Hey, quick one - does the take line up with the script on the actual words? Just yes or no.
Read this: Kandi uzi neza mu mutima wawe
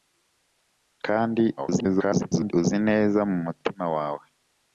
no